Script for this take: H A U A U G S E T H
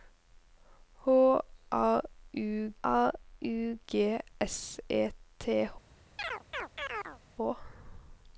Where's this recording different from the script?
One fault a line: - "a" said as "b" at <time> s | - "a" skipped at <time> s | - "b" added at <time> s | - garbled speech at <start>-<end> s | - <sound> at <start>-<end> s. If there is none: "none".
- chirp at 6.2-7.2 s